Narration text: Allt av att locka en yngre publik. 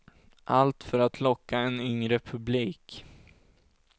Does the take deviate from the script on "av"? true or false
true